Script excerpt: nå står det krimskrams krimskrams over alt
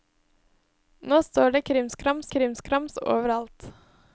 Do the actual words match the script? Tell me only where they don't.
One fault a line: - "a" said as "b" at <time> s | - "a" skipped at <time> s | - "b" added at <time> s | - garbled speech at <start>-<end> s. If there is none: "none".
none